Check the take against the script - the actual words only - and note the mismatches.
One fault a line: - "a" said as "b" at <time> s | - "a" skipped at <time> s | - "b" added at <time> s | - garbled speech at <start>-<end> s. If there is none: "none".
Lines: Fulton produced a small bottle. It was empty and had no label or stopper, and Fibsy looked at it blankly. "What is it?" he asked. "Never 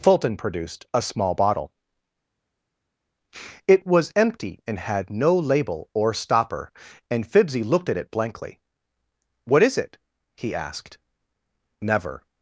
none